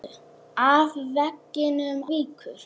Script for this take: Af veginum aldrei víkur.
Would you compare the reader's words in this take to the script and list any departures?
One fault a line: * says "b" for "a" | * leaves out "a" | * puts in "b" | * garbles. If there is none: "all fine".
* leaves out "aldrei"